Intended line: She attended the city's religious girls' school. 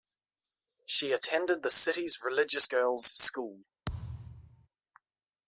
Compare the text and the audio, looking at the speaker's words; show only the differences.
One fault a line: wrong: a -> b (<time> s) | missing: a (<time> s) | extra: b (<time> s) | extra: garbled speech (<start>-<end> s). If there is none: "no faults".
no faults